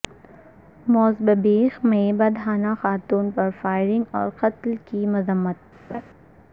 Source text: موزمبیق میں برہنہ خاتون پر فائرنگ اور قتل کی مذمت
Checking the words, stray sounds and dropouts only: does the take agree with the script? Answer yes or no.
no